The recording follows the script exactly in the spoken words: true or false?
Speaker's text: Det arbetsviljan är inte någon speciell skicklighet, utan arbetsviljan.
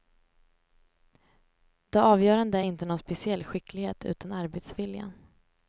false